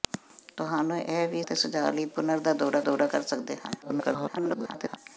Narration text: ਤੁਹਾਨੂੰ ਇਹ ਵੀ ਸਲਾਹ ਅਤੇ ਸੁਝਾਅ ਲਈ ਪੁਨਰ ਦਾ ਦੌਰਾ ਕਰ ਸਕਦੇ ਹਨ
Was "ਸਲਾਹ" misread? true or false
true